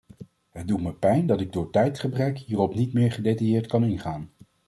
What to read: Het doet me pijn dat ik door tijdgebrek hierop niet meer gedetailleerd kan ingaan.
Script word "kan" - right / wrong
right